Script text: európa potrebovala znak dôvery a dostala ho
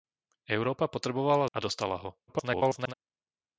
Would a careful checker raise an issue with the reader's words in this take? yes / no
yes